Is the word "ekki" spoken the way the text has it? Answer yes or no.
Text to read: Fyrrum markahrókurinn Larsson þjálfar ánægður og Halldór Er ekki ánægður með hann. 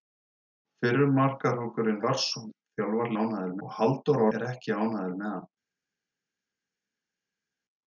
yes